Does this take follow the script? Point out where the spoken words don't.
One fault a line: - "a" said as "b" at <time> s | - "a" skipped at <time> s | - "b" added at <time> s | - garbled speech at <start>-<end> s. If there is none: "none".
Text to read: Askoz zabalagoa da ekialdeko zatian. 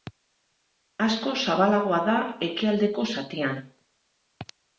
none